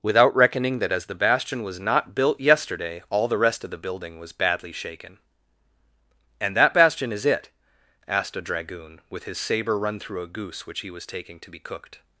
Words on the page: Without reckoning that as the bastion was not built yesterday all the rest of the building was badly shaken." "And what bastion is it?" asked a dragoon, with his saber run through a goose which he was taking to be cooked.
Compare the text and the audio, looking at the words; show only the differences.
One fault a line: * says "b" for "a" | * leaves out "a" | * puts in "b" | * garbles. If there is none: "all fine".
* says "that" for "what"